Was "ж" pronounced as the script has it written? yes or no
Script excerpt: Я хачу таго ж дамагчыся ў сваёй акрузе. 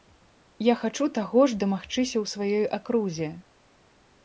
yes